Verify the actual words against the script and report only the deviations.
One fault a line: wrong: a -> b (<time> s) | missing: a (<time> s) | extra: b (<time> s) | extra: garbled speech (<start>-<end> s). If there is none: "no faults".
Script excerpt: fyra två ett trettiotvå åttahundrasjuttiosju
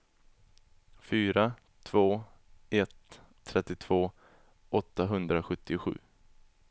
no faults